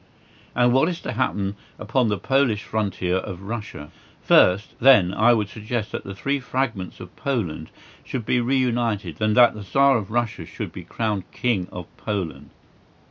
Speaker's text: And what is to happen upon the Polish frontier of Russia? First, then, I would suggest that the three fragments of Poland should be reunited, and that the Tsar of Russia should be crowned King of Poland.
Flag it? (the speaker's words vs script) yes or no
no